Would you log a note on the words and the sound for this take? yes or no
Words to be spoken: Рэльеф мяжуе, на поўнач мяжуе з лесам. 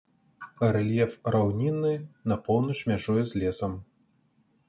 yes